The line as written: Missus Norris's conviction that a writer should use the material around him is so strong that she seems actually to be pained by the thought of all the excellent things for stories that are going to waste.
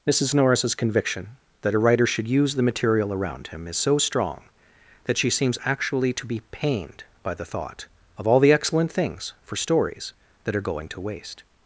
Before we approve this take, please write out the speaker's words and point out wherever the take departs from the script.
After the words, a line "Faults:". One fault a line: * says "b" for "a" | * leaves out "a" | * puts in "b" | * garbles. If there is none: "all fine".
Missus Norris's conviction that a writer should use the material around him is so strong that she seems actually to be pained by the thought of all the excellent things for stories that are going to waste.
Faults:
all fine